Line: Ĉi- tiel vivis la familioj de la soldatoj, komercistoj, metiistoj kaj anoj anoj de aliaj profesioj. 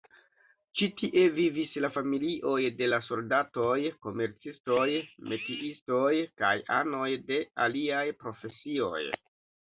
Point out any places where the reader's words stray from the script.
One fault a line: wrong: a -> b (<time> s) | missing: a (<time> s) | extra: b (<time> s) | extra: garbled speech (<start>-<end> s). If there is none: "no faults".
wrong: tiel -> tie (1.0 s)
missing: anoj (7.1 s)